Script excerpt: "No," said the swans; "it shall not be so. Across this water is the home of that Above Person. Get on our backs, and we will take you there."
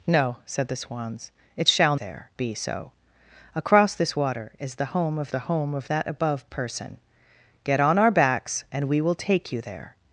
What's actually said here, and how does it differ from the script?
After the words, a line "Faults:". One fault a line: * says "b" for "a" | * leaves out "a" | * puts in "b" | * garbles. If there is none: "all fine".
"No," said the swans; "it shall there be so. Across this water is the home of the home of that Above Person. Get on our backs, and we will take you there."
Faults:
* says "there" for "not"
* puts in "the home of"